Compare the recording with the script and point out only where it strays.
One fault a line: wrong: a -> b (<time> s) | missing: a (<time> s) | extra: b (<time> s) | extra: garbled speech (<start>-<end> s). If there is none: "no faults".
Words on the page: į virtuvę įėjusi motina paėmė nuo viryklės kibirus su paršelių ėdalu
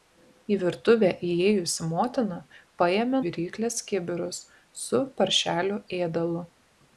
missing: nuo (3.2 s)